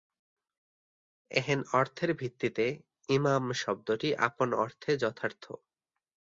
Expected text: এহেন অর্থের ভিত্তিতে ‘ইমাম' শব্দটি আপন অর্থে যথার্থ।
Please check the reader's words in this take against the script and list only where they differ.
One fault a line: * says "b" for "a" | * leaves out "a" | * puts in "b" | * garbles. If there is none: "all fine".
all fine